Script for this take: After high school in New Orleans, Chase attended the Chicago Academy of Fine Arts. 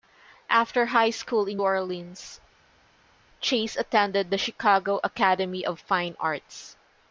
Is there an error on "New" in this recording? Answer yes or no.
yes